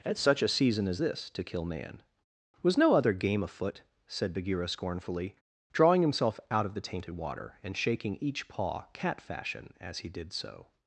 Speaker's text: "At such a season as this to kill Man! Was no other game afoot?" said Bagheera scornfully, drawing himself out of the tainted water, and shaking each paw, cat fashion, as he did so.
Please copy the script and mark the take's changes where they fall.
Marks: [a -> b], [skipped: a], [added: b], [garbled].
"At such a season as this to kill Man! Was no other game afoot?" said Bagheera scornfully, drawing himself out of the tainted water, and shaking each paw, cat fashion, as he did so.